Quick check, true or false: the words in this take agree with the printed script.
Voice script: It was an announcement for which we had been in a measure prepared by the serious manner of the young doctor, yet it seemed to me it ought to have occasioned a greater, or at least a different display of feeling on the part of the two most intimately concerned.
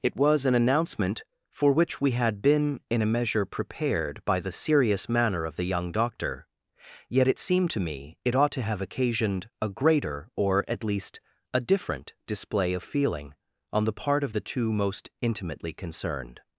true